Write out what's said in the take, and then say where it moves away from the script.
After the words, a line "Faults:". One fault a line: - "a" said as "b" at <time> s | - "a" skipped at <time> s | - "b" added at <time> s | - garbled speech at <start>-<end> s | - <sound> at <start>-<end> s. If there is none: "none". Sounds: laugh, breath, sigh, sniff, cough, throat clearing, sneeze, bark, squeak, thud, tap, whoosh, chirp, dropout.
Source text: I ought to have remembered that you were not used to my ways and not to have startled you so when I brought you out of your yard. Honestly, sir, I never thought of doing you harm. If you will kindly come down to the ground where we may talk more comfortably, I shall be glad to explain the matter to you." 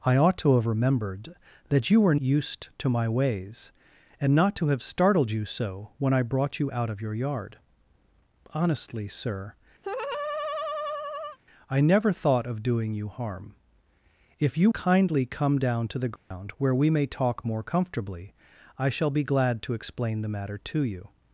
I ought to have remembered that you were used to my ways and not to have startled you so when I brought you out of your yard. Honestly, sir, I never thought of doing you harm. If you kindly come down to the ground where we may talk more comfortably, I shall be glad to explain the matter to you."
Faults:
- "not" skipped at 2.1 s
- laugh at 9.8-11.4 s
- "will" skipped at 14.7 s
- dropout at 16.2-16.3 s